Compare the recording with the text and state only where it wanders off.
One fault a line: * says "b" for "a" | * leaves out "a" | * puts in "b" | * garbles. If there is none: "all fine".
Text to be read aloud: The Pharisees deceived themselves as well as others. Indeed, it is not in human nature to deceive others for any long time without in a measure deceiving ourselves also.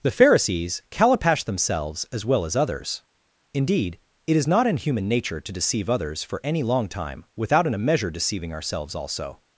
* says "calipash" for "deceived"